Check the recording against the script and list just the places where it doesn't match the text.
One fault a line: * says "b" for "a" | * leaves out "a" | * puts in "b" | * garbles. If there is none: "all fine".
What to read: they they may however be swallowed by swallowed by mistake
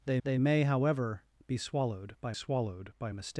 all fine